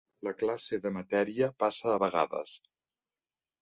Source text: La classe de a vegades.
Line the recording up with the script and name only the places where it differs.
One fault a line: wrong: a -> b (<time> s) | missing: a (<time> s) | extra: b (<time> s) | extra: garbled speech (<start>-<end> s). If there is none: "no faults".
extra: matèria passa (0.9 s)